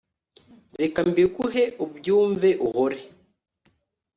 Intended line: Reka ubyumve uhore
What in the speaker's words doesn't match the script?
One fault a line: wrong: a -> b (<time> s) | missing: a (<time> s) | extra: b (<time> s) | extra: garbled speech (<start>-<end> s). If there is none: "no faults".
extra: mbiguhe (1.1 s)